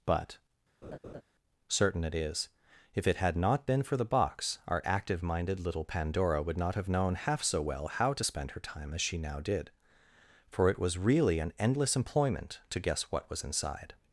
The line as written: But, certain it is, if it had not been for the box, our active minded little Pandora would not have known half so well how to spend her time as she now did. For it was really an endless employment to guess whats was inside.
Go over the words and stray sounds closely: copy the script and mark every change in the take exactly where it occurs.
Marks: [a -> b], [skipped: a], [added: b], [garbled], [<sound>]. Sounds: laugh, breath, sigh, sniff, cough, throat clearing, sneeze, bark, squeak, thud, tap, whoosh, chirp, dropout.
But, [laugh] certain it is, if it had not been for the box, our active minded little Pandora would not have known half so well how to spend her time as she now did. For it was really an endless employment to guess [whats -> what] was inside.